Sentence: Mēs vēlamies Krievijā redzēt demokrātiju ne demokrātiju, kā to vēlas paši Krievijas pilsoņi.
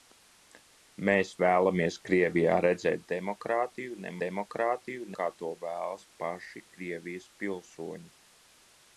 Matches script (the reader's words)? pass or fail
pass